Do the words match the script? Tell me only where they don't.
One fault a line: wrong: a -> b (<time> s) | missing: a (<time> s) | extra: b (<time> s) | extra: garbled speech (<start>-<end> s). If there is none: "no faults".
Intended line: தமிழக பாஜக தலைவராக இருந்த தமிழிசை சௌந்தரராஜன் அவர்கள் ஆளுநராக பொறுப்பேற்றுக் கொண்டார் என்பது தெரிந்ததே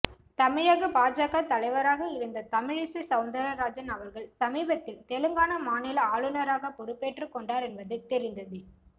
extra: சமீபத்தில் தெலுங்கானா மாநில (4.4 s)